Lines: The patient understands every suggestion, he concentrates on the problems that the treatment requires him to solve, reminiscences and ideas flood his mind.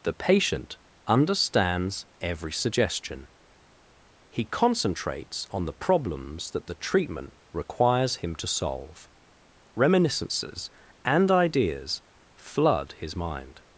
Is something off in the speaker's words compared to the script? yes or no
no